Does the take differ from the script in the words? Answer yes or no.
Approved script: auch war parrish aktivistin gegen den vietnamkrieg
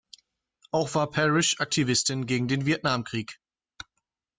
no